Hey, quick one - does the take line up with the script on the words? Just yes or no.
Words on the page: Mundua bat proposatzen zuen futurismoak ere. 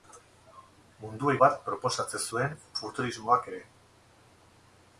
yes